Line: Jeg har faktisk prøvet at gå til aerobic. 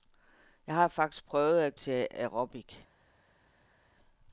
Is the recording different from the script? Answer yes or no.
yes